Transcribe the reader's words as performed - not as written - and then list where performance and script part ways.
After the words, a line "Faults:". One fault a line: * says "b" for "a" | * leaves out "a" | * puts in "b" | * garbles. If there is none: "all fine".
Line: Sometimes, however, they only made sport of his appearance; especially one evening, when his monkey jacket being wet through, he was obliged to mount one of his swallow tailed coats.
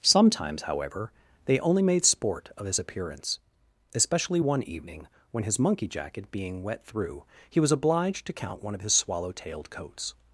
Sometimes, however, they only made sport of his appearance; especially one evening, when his monkey jacket being wet through, he was obliged to count one of his swallow tailed coats.
Faults:
* says "count" for "mount"